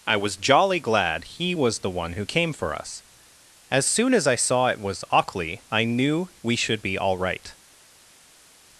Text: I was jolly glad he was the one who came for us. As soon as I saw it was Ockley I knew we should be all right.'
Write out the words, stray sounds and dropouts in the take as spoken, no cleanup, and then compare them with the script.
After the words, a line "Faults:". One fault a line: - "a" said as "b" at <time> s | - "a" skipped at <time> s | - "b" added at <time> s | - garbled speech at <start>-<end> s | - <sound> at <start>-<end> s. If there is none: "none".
I was jolly glad he was the one who came for us. As soon as I saw it was Ockley I knew we should be all right.'
Faults:
none